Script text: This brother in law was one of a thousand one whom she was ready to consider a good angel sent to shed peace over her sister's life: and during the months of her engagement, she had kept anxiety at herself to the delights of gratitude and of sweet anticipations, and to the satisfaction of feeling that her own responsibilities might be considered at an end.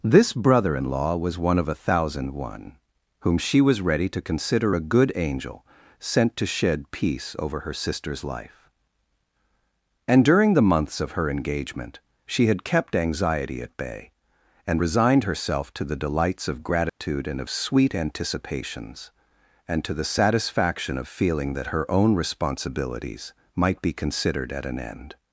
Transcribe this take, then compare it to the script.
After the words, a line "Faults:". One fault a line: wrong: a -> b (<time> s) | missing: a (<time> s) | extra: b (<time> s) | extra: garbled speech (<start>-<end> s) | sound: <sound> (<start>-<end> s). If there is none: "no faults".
This brother in law was one of a thousand one whom she was ready to consider a good angel sent to shed peace over her sister's life: and during the months of her engagement, she had kept anxiety at bay, and resigned herself to the delights of gratitude and of sweet anticipations, and to the satisfaction of feeling that her own responsibilities might be considered at an end.
Faults:
extra: bay and resigned (13.8 s)
sound: dropout (16.9-17.0 s)